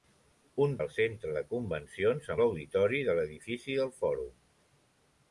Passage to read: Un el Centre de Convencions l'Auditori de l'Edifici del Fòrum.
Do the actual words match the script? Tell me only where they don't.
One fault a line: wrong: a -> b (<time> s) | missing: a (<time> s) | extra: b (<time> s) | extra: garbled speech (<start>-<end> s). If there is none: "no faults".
no faults